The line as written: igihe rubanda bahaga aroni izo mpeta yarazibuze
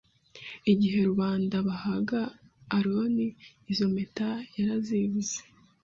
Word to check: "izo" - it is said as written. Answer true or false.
true